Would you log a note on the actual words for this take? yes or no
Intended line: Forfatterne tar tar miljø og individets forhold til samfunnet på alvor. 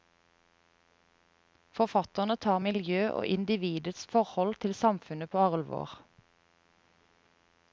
yes